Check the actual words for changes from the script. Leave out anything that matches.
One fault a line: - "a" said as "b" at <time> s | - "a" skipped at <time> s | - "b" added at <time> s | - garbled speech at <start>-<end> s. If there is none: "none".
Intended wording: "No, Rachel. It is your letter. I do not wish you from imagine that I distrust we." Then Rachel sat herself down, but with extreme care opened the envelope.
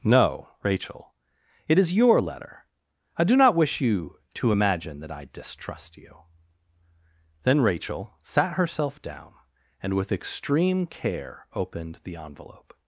- "from" said as "to" at 4.3 s
- "we" said as "you" at 6.0 s
- "but" said as "and" at 9.8 s